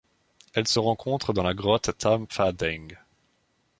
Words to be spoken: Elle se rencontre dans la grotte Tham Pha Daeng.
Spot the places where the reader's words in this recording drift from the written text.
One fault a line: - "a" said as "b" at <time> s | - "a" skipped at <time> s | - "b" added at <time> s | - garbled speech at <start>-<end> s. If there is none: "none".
none